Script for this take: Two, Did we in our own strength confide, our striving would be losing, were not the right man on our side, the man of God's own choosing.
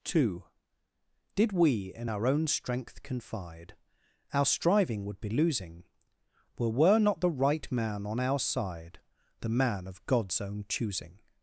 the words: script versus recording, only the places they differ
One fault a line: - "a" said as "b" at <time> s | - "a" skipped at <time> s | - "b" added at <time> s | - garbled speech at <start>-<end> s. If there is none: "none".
- "were" added at 6.7 s